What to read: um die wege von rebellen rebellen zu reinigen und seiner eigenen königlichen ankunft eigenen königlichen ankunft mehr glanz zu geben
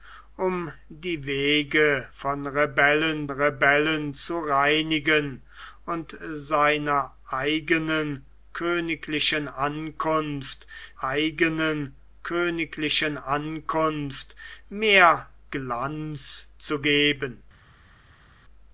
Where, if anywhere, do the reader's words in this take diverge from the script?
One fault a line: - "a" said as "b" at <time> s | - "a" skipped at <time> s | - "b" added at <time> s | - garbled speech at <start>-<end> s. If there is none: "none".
none